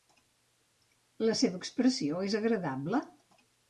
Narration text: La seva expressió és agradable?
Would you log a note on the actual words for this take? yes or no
no